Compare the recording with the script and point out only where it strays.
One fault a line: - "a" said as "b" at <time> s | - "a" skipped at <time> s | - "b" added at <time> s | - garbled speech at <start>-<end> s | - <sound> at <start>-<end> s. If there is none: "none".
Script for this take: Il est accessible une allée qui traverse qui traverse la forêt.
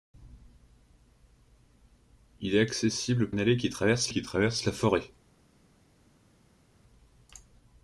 none